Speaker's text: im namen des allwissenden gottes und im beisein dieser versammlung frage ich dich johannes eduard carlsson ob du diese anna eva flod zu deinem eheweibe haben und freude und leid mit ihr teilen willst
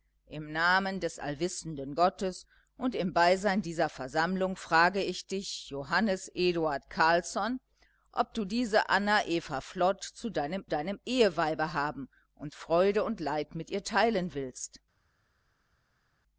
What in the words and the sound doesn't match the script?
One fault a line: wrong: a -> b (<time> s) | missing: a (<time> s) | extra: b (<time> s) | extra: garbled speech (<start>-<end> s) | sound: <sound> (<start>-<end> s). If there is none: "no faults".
extra: deinem (10.6 s)